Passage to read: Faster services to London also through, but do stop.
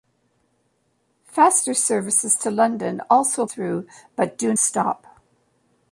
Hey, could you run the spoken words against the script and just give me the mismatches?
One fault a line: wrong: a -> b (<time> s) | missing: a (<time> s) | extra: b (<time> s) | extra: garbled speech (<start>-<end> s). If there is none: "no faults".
no faults